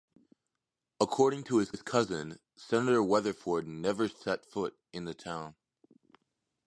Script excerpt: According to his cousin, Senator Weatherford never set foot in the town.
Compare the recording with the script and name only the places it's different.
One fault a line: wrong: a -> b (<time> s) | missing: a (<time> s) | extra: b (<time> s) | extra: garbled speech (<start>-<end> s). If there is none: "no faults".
extra: his (1.7 s)